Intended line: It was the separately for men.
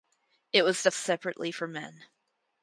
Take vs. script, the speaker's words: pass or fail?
pass